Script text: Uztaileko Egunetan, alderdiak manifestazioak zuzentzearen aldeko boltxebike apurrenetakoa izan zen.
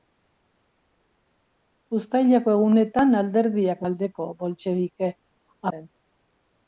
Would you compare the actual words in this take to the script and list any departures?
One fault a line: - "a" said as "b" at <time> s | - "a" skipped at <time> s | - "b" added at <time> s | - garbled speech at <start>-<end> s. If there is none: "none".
- "manifestazioak zuzentzearen" skipped at 3.8 s
- "apurrenetakoa izan" skipped at 5.1 s